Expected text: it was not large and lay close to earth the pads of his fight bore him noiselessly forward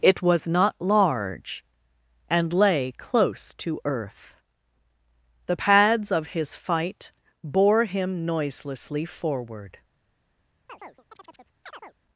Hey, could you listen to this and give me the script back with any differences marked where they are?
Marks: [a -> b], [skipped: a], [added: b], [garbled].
it was not large and lay close to earth the pads of his fight bore him noiselessly forward